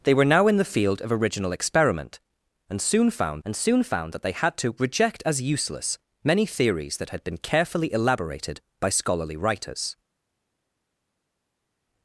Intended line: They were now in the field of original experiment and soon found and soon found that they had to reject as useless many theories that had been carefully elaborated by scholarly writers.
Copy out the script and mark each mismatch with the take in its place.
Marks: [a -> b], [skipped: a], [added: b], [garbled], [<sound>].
They were now in the field of original experiment and soon found and soon found that they had to reject as useless many theories that had been carefully elaborated by scholarly writers.